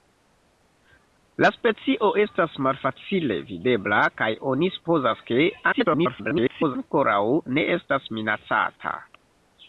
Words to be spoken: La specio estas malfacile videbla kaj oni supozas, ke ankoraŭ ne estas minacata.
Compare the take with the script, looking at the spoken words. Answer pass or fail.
fail